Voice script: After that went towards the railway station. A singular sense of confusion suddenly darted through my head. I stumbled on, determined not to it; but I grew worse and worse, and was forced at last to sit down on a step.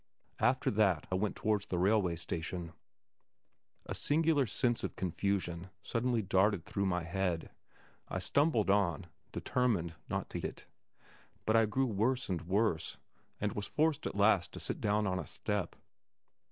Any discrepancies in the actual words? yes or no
no